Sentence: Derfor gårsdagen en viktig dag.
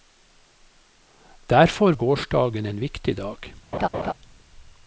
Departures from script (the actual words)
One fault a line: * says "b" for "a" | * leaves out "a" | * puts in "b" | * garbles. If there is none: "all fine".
all fine